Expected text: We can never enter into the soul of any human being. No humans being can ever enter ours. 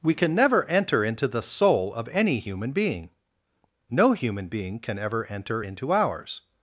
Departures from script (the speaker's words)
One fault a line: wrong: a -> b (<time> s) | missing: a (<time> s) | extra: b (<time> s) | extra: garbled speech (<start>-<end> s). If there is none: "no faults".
wrong: humans -> human (4.1 s)
extra: into (5.6 s)